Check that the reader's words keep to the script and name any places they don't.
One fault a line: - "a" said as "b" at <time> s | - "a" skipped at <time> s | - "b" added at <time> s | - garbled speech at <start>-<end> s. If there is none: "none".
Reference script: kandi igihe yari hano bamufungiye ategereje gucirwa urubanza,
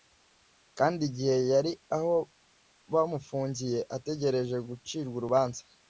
- "hano" said as "aho" at 1.9 s